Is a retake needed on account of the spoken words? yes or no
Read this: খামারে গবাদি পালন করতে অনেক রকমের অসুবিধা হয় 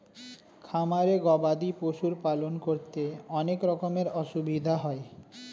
yes